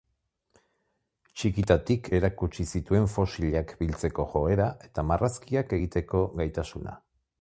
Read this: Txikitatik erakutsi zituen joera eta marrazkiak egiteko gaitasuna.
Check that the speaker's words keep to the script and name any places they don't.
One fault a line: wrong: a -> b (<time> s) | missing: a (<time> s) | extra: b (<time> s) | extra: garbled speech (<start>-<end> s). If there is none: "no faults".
extra: fosilak biltzeko (3.1 s)